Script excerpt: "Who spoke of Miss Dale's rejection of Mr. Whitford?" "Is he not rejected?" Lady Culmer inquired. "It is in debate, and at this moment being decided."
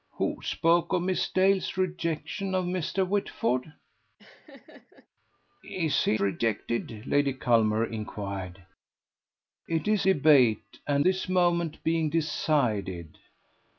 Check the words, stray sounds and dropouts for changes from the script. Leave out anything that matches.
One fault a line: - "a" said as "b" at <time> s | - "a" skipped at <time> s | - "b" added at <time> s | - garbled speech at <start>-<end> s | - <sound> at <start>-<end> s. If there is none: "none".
- laugh at 4.2-5.1 s
- "not" skipped at 6.2 s
- "in" skipped at 10.1 s
- "at" skipped at 11.0 s